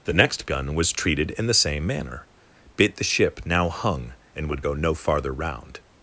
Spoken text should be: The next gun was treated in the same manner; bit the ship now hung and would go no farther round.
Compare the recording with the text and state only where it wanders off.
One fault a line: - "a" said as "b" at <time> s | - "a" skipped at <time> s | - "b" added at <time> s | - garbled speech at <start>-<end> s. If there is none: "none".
none